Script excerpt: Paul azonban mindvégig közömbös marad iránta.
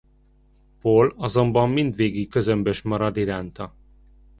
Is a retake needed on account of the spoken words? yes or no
no